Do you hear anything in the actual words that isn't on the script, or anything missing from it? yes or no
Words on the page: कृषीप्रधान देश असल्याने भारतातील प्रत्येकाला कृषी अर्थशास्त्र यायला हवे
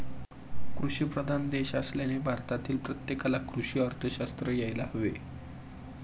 no